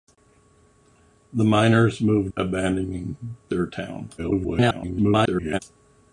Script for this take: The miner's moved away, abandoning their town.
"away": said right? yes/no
no